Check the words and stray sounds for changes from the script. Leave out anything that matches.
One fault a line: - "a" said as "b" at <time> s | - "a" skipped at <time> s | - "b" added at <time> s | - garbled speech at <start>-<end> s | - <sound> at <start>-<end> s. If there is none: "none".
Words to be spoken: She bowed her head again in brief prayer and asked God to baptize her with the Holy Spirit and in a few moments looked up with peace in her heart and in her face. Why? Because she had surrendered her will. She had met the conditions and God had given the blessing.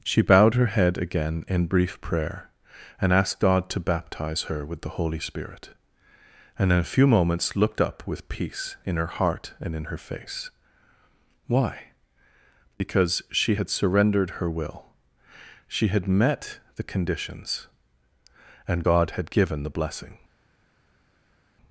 none